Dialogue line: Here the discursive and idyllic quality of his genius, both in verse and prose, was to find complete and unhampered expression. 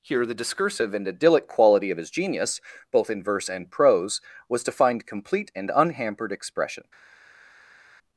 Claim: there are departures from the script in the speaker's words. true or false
false